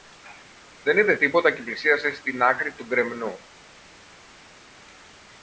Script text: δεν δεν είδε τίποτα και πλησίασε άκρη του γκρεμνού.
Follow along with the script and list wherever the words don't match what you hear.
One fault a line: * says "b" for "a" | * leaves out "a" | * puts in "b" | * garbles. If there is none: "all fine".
* leaves out "δεν"
* puts in "στην"